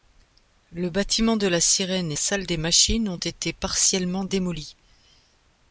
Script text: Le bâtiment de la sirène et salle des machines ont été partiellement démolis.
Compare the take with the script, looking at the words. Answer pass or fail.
pass